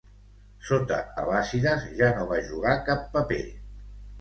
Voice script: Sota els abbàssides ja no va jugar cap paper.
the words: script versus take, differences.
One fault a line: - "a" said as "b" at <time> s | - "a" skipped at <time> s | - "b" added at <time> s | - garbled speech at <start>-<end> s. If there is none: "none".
- "els" skipped at 1.0 s